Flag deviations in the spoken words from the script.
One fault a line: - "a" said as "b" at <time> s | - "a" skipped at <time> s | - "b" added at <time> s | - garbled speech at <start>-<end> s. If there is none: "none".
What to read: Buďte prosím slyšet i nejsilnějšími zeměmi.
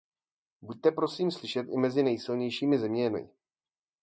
- "mezi" added at 1.8 s